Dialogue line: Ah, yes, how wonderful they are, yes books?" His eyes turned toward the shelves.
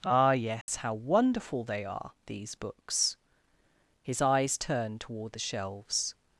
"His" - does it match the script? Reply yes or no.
yes